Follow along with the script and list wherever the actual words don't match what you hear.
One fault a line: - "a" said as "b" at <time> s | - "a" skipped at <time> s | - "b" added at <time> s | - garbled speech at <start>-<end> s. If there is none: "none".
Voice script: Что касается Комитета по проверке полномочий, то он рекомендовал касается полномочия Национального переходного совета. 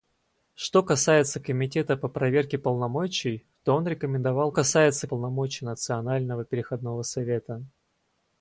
none